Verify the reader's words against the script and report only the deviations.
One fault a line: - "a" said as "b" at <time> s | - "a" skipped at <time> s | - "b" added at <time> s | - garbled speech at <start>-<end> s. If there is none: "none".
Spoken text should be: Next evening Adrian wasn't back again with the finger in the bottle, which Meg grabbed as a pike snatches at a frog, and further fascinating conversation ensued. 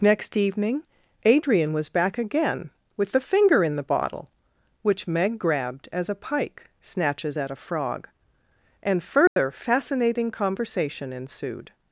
- "wasn't" said as "was" at 1.7 s